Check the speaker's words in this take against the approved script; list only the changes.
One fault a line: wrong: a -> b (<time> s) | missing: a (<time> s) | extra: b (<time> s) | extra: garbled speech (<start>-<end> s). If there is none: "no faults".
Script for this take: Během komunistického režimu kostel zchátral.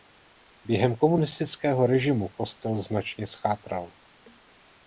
extra: značně (2.8 s)